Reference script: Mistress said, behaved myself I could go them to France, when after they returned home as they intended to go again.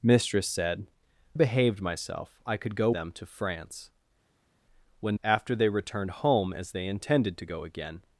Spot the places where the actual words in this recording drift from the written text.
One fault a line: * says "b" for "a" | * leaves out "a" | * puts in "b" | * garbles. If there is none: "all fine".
all fine